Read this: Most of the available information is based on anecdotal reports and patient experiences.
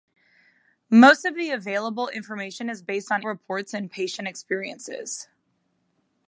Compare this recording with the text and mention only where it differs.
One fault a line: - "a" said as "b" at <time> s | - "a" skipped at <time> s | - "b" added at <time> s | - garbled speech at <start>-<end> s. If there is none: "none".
- "anecdotal" skipped at 3.2 s